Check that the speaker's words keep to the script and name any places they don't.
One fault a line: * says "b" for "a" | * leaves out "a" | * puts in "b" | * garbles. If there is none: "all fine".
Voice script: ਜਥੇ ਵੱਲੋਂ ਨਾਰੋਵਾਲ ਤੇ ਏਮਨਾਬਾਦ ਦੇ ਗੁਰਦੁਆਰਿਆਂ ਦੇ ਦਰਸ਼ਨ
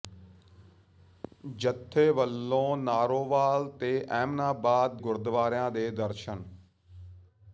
* leaves out "ਦੇ"